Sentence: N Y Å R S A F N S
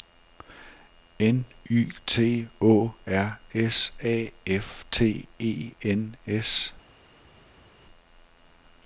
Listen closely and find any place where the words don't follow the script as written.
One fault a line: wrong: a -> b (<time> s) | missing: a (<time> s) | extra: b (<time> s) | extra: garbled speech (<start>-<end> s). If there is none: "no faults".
extra: T (2.1 s)
extra: T E (4.9 s)